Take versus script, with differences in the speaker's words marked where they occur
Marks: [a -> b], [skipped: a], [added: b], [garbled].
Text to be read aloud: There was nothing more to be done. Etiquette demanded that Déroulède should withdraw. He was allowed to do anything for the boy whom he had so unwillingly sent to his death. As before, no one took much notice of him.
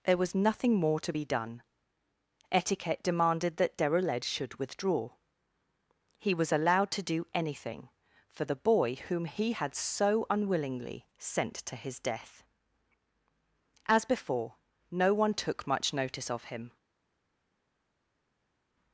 There was nothing more to be done. Etiquette demanded that Déroulède should withdraw. He was allowed to do anything for the boy whom he had so unwillingly sent to his death. As before, no one took much notice of him.